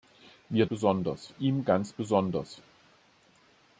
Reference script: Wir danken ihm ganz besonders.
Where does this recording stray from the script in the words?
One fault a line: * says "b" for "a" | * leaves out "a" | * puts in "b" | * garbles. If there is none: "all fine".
* says "besonders" for "danken"